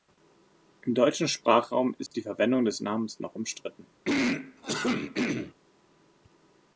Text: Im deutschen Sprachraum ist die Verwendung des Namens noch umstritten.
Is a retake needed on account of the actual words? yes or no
no